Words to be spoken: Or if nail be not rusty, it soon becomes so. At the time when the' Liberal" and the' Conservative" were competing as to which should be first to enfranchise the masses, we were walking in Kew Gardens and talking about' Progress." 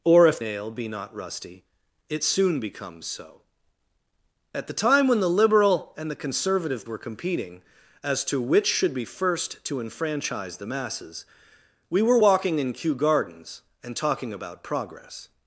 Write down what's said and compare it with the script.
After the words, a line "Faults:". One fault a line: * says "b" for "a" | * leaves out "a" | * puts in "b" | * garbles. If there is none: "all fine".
Or if nail be not rusty, it soon becomes so. At the time when the' Liberal" and the' Conservative" were competing as to which should be first to enfranchise the masses, we were walking in Kew Gardens and talking about' Progress."
Faults:
all fine